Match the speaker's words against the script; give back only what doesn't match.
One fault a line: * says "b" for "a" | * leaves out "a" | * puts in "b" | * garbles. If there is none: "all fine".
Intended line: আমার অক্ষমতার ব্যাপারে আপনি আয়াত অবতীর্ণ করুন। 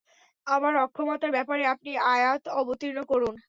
all fine